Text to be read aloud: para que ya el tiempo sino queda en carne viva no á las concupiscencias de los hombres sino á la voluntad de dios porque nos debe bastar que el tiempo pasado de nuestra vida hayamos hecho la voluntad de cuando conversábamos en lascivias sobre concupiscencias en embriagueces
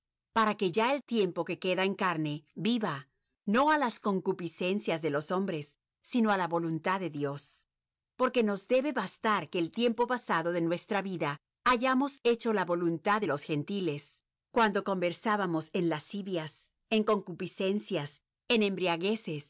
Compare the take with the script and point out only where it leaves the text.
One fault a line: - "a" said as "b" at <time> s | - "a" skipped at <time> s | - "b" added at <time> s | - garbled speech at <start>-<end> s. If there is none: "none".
- "sino" said as "que" at 1.4 s
- "los gentiles" added at 13.2 s
- "sobre" said as "en" at 16.9 s